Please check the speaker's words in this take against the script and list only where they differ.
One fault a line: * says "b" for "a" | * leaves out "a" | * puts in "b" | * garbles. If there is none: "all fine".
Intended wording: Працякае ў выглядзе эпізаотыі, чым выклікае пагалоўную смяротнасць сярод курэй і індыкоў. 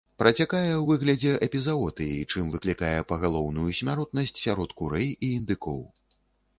all fine